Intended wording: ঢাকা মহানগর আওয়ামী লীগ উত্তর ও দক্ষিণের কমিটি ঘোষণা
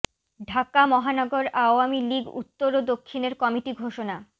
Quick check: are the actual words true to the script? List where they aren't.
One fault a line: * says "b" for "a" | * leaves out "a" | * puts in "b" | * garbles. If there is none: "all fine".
all fine